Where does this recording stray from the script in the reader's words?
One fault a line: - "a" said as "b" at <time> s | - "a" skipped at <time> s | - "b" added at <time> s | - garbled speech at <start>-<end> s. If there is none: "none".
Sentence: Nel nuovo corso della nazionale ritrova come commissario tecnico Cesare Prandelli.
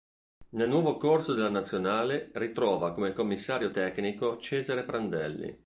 none